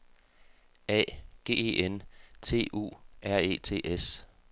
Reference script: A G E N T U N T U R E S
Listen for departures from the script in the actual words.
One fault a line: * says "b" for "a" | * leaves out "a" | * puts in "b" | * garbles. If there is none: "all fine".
* leaves out "N T U"
* puts in "T"